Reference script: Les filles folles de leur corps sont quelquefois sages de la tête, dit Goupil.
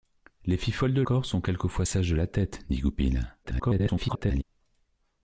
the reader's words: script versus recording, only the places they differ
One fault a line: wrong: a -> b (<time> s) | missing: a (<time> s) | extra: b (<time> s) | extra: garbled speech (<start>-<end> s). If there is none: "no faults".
missing: leur (1.0 s)
extra: garbled speech (3.4-4.4 s)